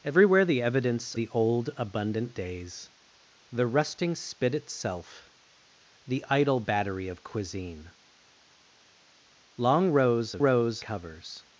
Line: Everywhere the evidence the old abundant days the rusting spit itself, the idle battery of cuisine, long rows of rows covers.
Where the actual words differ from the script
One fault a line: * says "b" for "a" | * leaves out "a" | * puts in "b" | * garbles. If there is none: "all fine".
all fine